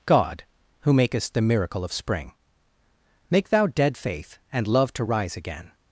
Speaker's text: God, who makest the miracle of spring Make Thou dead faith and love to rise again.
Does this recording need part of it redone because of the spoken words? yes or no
no